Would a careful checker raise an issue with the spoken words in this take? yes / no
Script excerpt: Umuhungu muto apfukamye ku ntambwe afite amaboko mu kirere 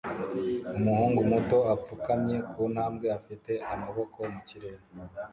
no